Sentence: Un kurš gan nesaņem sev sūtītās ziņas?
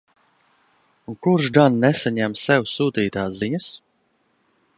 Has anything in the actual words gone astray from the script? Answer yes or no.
no